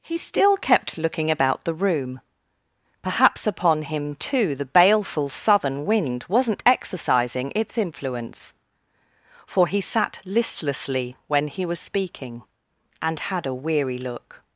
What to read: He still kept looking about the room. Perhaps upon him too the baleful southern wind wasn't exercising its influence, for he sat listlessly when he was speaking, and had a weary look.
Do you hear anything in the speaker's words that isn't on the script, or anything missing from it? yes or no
no